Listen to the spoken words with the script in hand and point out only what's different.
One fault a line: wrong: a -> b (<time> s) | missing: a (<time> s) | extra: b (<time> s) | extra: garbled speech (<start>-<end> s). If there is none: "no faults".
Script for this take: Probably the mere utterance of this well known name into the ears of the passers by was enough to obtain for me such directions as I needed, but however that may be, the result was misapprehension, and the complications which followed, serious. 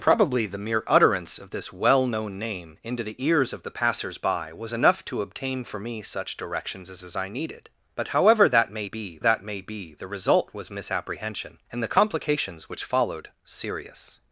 extra: as (7.0 s)
extra: that may be (9.2 s)